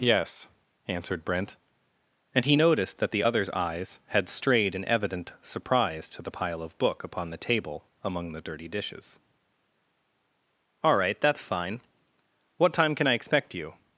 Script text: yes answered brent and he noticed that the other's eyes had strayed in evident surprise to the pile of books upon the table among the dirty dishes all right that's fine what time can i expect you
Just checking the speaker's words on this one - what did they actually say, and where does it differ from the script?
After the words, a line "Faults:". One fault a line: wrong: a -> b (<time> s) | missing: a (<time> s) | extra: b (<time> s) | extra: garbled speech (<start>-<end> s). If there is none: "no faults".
yes answered brent and he noticed that the other's eyes had strayed in evident surprise to the pile of book upon the table among the dirty dishes all right that's fine what time can i expect you
Faults:
wrong: books -> book (6.8 s)